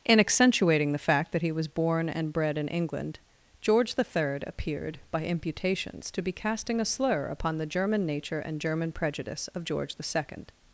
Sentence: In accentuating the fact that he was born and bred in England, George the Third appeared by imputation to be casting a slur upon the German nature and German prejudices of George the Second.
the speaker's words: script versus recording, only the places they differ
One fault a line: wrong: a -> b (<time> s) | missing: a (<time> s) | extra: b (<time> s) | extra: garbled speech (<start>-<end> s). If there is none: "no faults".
wrong: imputation -> imputations (5.2 s)
wrong: prejudices -> prejudice (8.9 s)